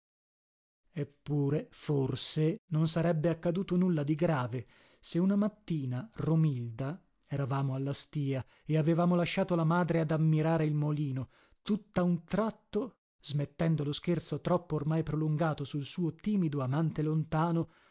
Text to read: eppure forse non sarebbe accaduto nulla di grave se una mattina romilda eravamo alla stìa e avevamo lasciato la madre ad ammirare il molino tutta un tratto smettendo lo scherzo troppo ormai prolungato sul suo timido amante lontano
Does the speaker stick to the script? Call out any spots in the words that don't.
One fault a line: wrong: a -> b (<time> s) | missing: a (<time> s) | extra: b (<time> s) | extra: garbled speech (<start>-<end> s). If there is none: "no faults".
no faults